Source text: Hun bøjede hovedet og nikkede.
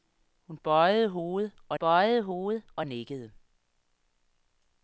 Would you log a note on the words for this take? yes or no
yes